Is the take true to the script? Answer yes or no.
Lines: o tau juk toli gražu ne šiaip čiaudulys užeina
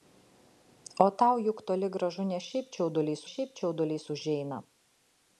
no